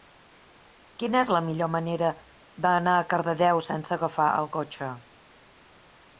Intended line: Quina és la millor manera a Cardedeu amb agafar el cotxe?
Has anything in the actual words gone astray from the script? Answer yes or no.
yes